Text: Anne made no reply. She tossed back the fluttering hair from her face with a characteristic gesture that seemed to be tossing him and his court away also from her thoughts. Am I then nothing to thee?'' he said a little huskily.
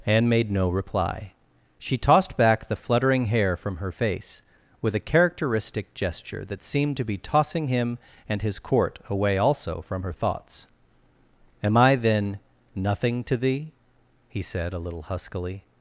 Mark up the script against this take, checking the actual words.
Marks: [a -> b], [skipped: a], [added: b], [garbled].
Anne made no reply. She tossed back the fluttering hair from her face with a characteristic gesture that seemed to be tossing him and his court away also from her thoughts. Am I then nothing to thee?'' he said a little huskily.